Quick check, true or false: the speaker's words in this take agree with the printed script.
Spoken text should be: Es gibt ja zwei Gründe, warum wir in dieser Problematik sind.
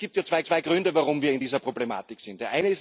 false